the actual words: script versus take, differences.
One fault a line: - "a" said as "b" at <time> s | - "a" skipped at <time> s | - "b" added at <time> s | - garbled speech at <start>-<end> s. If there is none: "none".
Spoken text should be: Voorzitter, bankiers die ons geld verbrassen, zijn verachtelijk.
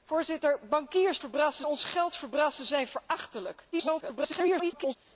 - "die" said as "verbrassen" at 1.2 s
- garbled speech at 3.7-5.0 s